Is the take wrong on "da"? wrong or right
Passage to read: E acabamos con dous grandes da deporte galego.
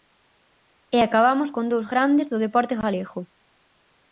wrong